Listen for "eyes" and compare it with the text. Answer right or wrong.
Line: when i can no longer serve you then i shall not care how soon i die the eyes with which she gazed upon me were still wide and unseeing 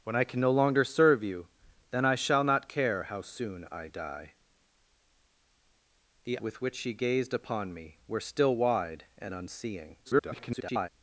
wrong